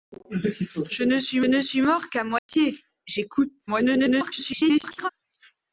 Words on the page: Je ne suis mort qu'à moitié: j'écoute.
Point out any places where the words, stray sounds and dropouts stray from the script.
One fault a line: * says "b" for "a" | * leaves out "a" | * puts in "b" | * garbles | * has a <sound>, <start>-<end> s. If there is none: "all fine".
* puts in "ne suis"
* has a dropout, 2.4-2.5 s
* garbles